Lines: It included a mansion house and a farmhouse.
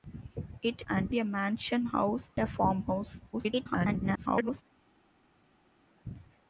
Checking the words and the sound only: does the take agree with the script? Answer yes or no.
no